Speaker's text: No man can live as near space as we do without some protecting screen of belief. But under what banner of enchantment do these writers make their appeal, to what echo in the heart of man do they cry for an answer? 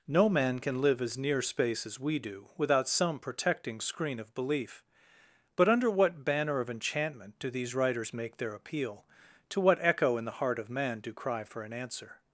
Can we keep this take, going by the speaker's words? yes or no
no